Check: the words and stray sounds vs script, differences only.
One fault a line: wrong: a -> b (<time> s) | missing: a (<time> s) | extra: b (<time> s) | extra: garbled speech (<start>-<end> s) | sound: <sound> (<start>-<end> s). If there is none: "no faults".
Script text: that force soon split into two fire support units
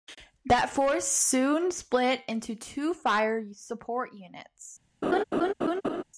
sound: laugh (5.0-6.0 s)